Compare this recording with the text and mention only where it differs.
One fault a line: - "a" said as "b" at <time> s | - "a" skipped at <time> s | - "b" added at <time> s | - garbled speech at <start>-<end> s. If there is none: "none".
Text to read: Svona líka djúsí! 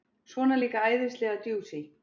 - "æðislega" added at 0.9 s